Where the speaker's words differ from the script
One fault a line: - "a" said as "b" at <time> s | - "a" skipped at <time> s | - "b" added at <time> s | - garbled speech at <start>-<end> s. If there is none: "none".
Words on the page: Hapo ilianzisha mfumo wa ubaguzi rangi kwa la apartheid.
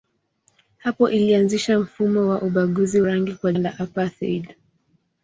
none